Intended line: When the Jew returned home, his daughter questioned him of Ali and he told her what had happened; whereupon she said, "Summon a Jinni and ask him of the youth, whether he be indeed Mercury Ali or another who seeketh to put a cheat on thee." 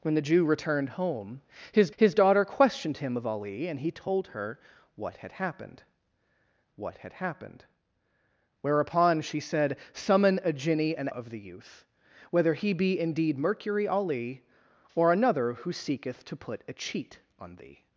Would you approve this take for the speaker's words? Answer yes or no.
no